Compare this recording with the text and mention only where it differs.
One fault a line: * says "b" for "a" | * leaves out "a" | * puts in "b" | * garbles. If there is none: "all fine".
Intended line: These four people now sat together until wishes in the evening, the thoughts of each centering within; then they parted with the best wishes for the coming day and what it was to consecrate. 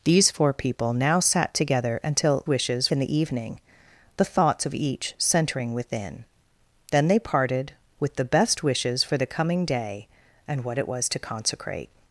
all fine